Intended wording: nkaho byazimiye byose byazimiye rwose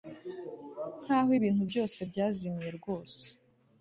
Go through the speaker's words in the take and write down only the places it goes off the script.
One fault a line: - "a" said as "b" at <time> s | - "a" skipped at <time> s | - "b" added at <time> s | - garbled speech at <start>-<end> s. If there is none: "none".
- "byazimiye" said as "ibintu" at 1.4 s